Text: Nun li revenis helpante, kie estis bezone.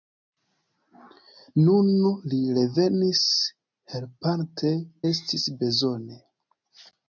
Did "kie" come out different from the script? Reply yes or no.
yes